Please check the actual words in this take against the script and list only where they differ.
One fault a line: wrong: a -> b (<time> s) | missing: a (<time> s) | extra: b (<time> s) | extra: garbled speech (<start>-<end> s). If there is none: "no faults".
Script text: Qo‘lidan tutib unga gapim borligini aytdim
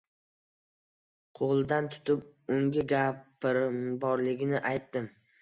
no faults